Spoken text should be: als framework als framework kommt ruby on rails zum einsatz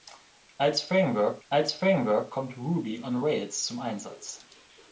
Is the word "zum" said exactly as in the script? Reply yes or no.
yes